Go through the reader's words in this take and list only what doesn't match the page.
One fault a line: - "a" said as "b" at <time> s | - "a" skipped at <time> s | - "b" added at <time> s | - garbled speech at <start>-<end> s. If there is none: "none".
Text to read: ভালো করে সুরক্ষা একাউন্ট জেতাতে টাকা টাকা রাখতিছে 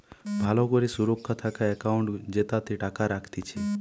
- "থাকা" added at 1.4 s
- "টাকা" skipped at 3.0 s